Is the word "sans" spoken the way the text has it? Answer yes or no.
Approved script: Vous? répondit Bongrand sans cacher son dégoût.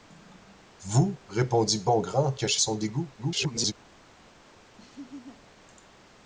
no